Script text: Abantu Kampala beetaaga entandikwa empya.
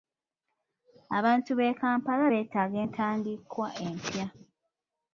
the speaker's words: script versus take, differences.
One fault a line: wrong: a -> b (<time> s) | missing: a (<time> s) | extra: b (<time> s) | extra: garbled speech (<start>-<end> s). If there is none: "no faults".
extra: b'e (1.6 s)